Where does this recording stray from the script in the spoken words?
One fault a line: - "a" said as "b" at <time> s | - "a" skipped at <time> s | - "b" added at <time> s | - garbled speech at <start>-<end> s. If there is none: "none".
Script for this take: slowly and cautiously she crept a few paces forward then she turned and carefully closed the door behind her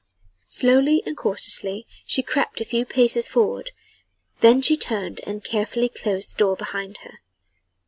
none